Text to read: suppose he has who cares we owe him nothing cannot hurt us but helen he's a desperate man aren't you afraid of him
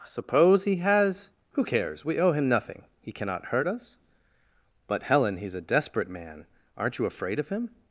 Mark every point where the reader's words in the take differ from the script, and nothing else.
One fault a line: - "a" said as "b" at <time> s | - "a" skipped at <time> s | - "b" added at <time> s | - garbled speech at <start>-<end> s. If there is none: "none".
- "he" added at 3.0 s